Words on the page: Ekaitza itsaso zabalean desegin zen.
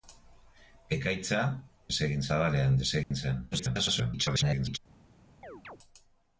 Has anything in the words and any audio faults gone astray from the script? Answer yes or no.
yes